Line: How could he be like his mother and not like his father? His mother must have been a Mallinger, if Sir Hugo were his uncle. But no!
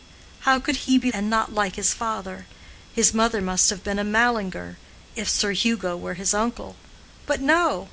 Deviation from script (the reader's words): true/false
true